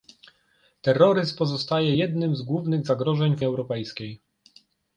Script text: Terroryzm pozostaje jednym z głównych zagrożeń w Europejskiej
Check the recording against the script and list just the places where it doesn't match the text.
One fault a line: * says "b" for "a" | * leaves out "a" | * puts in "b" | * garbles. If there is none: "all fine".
all fine